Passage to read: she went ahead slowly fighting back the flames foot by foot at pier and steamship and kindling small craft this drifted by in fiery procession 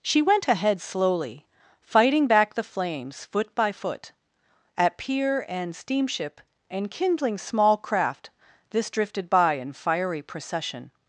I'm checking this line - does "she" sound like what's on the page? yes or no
yes